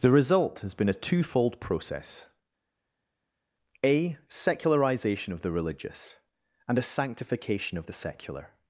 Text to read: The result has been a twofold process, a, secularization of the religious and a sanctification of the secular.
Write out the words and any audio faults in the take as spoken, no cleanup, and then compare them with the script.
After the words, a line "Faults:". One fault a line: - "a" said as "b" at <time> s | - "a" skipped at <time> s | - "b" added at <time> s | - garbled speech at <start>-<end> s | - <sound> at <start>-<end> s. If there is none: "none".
The result has been a twofold process, a, secularization of the religious and a sanctification of the secular.
Faults:
none